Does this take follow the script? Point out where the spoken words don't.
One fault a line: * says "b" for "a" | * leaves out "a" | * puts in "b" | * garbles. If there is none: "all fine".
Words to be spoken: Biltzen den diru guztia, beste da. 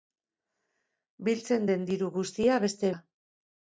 all fine